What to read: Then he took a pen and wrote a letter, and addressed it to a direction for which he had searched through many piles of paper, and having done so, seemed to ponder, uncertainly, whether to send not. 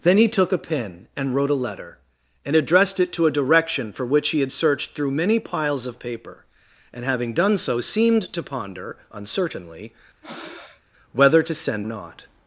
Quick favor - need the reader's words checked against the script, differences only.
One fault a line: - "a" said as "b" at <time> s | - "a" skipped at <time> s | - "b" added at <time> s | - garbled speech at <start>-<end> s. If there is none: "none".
none